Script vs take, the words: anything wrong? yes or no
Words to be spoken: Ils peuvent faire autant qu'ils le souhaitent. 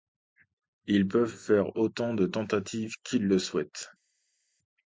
yes